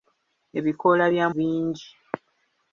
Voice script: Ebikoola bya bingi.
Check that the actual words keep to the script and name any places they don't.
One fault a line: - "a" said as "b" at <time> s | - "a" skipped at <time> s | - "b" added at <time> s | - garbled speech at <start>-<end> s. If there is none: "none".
none